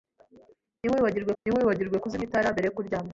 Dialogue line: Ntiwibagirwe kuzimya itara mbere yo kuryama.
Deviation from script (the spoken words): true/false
true